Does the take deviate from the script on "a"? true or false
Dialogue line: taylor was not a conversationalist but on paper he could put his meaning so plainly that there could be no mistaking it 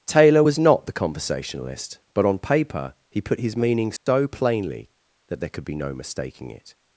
true